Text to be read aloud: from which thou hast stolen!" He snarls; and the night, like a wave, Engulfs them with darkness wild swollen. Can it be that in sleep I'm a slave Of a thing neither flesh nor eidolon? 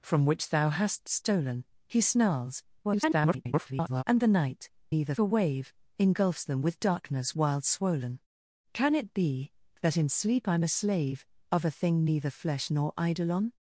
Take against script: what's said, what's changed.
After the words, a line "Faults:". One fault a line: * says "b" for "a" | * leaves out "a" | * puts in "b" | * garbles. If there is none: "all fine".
from which thou hast stolen!" He snarls; [garbled] and the night, neither a wave, Engulfs them with darkness wild swollen. Can it be that in sleep I'm a slave Of a thing neither flesh nor eidolon?
Faults:
* garbles
* says "neither" for "like"